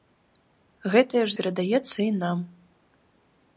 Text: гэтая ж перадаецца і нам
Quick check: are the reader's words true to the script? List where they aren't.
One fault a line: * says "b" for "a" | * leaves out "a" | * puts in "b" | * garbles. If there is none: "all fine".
all fine